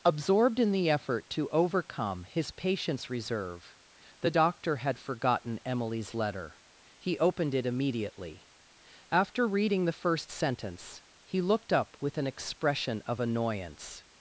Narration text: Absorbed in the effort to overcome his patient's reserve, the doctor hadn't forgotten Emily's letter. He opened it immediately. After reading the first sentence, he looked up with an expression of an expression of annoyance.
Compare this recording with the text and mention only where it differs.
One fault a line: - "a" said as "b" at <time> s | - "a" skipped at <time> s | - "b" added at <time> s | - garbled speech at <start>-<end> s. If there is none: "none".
- "hadn't" said as "had" at 4.8 s
- "an expression of" skipped at 13.2 s